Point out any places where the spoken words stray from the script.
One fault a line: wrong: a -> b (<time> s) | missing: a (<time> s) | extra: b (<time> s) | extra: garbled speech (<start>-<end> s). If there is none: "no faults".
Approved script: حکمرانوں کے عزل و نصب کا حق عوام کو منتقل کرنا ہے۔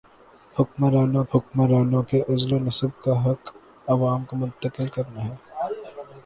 extra: حکمرانوں (1.3 s)